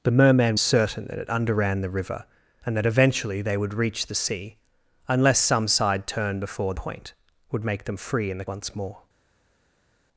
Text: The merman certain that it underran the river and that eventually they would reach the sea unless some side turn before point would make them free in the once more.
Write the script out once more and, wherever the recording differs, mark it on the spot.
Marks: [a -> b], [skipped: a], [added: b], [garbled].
The merman certain that it underran the river and that eventually they would reach the sea unless some side turn before point would make them free in the once more.